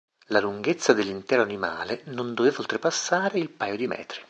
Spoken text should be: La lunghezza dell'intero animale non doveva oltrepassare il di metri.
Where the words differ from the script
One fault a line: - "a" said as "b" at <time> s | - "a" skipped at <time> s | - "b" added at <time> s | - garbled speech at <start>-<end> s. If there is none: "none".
- "paio" added at 3.5 s